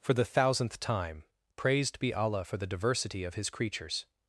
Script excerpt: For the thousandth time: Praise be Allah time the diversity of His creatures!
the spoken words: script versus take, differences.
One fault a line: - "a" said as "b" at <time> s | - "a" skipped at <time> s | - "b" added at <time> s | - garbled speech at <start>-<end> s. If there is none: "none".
- "Praise" said as "Praised" at 1.6 s
- "time" said as "for" at 2.4 s